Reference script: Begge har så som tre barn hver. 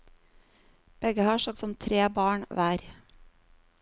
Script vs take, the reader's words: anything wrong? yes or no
no